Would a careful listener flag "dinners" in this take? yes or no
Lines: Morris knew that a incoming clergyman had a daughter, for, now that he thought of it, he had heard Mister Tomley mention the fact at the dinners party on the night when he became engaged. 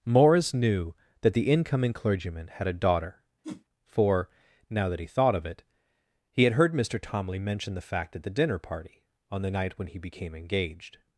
yes